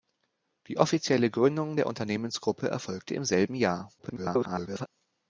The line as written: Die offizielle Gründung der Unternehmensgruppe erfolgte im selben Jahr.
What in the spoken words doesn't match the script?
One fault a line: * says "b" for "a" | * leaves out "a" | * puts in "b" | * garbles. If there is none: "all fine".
* garbles